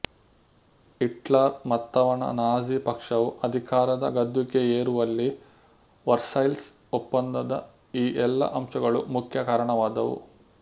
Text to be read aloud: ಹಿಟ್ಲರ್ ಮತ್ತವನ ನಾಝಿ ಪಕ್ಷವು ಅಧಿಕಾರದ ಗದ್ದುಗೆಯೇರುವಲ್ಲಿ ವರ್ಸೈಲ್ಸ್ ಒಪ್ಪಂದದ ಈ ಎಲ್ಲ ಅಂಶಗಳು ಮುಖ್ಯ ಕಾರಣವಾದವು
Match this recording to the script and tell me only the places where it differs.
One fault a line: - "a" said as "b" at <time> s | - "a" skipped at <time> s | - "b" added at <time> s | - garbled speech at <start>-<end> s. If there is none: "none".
none